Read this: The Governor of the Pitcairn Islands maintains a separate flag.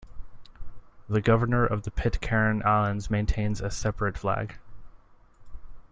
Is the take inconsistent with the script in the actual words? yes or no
no